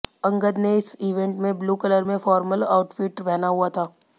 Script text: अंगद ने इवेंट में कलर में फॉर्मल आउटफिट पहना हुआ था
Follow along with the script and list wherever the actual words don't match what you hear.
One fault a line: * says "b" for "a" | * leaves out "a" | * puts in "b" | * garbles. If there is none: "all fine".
* puts in "इस"
* puts in "ब्लू"